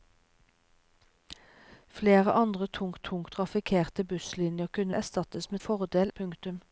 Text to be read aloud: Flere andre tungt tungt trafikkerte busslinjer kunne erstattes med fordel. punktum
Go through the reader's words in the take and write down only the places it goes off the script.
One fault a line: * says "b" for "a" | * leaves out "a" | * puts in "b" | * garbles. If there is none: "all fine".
all fine